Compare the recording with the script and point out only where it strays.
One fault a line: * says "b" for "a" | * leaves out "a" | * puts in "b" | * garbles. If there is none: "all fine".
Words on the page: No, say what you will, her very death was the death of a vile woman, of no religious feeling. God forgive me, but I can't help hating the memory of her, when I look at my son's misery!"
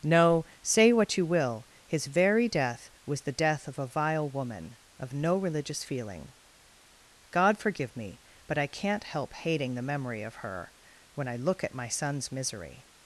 * says "his" for "her"